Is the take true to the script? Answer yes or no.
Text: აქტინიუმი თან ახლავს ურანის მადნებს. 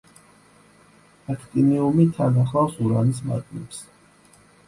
yes